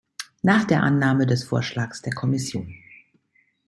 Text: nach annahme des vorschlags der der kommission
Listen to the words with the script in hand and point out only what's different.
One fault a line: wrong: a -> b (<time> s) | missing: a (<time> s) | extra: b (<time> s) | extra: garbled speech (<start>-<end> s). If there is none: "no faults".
extra: der (0.7 s)
missing: der (2.1 s)